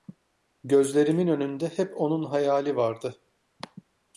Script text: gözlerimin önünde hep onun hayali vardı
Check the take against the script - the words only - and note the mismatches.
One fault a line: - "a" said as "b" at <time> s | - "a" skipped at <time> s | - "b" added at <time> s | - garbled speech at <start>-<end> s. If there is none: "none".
none